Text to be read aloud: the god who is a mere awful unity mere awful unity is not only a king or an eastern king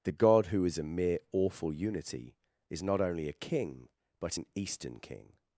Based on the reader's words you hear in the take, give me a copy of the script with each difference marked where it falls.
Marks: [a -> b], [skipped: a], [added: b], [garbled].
the god who is a mere awful unity [skipped: mere awful unity] is not only a king [or -> but] an eastern king